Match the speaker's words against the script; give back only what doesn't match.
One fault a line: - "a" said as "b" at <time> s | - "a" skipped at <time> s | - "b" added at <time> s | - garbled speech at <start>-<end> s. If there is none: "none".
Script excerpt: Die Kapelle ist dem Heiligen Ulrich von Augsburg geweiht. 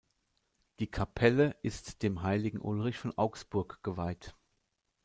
none